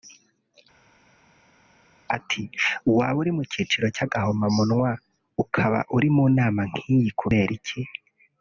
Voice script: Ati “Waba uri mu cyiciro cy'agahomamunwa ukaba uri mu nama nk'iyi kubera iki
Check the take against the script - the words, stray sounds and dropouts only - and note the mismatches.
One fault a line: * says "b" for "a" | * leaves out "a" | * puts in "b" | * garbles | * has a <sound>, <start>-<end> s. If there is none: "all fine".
all fine